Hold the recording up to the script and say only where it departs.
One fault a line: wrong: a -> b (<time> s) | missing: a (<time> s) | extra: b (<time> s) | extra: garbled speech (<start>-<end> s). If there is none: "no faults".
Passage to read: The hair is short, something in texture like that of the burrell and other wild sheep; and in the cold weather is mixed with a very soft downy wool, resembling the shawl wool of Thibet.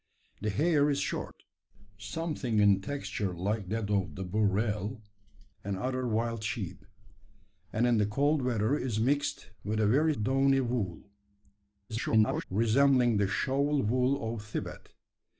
missing: soft (10.2 s)
extra: garbled speech (11.9-12.4 s)